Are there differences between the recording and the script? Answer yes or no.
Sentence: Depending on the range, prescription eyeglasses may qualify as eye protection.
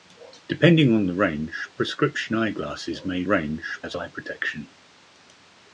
yes